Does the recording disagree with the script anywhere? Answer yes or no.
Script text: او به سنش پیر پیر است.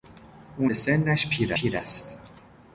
no